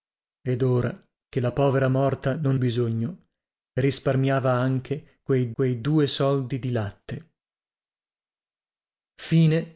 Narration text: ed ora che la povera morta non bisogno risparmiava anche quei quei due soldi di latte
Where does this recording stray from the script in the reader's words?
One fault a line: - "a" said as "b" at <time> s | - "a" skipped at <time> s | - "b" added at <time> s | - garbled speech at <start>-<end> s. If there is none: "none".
none